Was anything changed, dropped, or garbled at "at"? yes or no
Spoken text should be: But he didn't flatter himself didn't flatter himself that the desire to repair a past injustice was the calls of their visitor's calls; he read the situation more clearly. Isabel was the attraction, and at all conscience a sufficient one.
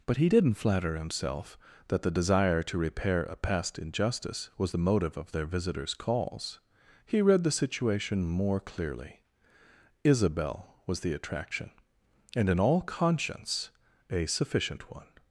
yes